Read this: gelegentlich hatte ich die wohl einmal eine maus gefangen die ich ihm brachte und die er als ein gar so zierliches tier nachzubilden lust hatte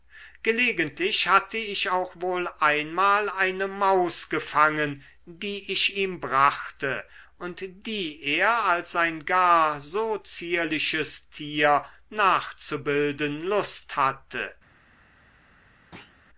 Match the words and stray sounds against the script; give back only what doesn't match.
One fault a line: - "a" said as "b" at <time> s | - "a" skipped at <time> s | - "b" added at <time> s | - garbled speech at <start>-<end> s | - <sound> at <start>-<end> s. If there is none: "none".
- "die" said as "auch" at 1.9 s
- thud at 15.9-16.2 s